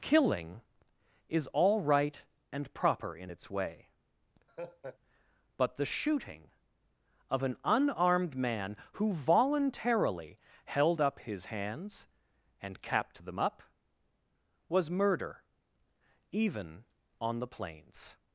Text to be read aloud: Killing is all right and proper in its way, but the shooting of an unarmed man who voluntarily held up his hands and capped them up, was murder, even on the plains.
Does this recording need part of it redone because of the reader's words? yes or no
no